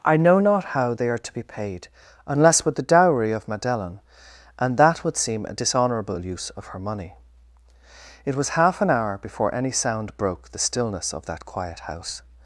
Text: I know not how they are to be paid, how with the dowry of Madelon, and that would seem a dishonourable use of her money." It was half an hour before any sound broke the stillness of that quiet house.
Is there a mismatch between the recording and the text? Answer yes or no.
yes